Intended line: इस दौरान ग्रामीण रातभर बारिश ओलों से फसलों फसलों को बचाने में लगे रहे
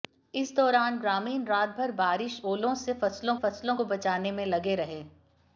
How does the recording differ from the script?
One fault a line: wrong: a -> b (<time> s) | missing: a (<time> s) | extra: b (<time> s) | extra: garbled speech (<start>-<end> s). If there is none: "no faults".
no faults